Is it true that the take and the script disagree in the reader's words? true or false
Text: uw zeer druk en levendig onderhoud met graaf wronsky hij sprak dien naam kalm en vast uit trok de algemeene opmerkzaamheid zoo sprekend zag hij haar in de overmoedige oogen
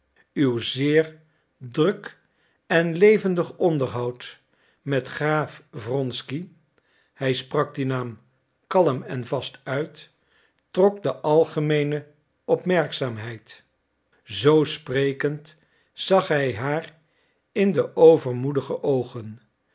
false